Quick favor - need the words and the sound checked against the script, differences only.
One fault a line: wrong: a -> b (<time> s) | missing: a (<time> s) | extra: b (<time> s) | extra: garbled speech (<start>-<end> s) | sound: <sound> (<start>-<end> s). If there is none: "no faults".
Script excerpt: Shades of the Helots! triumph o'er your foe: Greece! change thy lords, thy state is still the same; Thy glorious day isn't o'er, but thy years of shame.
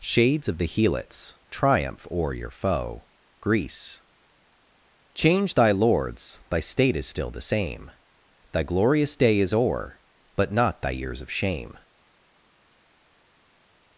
wrong: isn't -> is (9.4 s)
extra: not (10.5 s)